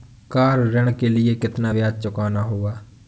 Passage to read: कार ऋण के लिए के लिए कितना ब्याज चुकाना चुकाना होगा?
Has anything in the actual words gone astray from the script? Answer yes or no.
yes